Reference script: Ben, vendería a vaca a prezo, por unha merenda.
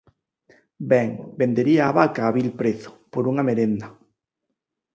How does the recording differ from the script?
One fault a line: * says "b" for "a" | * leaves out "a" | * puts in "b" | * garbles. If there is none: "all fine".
* puts in "vil"